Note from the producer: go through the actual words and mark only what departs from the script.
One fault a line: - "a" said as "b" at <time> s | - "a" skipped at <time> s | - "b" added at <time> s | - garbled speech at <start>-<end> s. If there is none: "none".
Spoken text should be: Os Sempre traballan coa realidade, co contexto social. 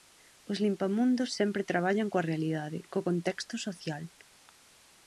- "Limpamundos" added at 0.7 s